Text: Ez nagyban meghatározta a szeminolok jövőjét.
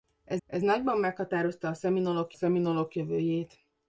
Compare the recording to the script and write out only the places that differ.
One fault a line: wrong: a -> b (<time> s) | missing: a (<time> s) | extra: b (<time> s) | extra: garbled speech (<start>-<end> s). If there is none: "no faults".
extra: ez (0.4 s)
extra: szeminolok (2.3 s)